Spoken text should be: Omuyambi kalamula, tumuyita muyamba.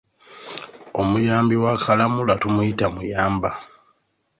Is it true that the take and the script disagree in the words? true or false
true